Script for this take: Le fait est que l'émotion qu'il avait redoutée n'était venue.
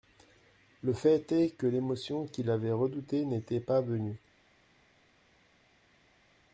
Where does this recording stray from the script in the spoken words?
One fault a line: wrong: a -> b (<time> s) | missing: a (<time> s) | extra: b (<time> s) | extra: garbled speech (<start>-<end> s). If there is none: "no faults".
extra: pas (3.6 s)